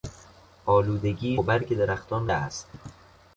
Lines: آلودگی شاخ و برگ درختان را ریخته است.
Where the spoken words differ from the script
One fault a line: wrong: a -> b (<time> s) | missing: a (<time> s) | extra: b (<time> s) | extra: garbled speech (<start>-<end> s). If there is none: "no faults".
missing: شاخ (1.4 s)
missing: را ریخته (2.3 s)